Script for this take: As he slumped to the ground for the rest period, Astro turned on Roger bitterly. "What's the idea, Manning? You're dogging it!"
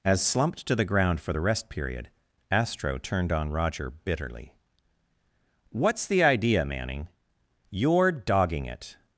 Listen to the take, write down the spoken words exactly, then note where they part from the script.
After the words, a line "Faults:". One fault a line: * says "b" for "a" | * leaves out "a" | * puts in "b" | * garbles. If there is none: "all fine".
As slumped to the ground for the rest period, Astro turned on Roger bitterly. "What's the idea, Manning? You're dogging it!"
Faults:
* leaves out "he"